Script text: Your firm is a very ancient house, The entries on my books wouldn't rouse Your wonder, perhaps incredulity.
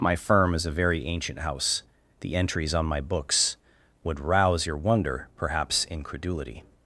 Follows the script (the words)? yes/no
no